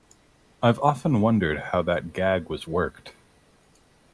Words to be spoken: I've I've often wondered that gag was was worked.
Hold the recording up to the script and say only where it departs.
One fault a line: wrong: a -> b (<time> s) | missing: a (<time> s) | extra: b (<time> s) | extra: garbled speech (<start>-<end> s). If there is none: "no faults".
missing: I've (0.8 s)
extra: how (1.6 s)
missing: was (2.7 s)